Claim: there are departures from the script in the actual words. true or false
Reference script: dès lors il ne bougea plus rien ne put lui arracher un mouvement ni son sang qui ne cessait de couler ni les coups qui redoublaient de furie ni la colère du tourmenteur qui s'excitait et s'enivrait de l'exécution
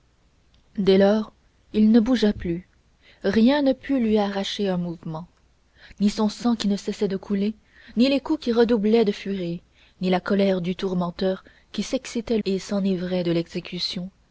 false